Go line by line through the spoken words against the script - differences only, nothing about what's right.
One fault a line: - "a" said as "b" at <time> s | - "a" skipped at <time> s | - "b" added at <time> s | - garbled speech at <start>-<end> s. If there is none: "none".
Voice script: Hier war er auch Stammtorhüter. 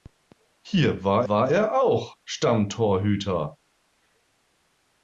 - "war" added at 1.3 s